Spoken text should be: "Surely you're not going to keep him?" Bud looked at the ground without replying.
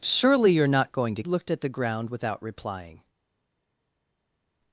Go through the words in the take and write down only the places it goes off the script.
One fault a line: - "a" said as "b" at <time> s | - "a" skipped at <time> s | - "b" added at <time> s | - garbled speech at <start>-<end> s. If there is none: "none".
- "keep him Bud" skipped at 1.2 s